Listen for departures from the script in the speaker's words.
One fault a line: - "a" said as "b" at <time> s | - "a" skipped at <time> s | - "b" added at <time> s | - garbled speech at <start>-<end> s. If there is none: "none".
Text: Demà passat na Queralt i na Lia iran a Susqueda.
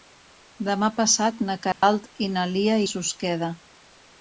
- "iran" skipped at 2.8 s